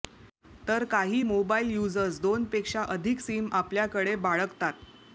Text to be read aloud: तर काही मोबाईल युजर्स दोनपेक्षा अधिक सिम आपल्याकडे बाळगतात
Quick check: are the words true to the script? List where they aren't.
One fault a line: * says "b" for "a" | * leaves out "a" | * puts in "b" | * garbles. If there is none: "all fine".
all fine